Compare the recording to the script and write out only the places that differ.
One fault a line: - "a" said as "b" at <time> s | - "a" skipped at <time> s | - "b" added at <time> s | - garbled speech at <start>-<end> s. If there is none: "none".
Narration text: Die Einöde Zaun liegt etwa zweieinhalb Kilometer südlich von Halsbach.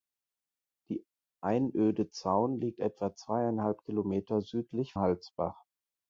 - "von" skipped at 4.9 s